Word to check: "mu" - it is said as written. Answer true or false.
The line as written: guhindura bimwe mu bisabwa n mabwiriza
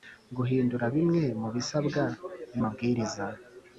true